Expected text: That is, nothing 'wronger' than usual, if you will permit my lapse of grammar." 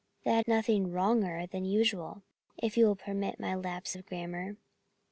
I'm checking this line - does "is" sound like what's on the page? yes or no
no